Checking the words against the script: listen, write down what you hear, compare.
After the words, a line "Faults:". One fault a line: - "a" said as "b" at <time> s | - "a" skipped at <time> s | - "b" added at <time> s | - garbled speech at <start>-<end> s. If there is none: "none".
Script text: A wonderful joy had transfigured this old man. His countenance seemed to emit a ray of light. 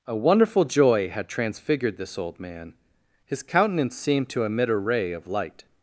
A wonderful joy had transfigured this old man. His countenance seemed to emit a ray of light.
Faults:
none